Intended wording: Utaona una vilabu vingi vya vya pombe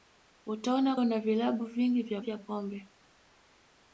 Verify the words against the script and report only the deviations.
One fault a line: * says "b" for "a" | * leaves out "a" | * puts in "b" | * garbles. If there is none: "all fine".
all fine